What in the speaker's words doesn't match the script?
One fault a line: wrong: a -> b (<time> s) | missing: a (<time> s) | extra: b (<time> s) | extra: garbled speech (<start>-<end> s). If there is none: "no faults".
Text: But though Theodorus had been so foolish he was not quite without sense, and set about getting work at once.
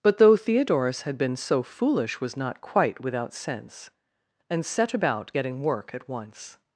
missing: he (2.2 s)